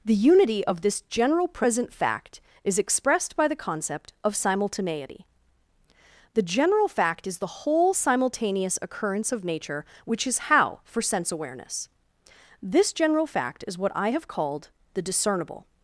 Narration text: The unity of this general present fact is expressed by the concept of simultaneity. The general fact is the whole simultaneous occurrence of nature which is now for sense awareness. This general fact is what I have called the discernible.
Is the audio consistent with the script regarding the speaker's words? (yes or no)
no